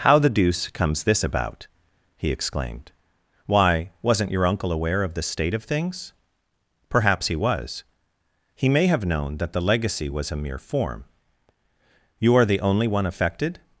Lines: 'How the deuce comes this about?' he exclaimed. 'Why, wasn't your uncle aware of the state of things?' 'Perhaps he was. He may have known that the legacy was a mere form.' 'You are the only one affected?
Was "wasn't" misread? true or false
false